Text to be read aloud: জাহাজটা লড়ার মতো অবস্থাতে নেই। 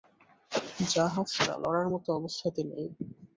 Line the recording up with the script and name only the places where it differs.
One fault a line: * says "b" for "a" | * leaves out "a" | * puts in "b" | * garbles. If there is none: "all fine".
all fine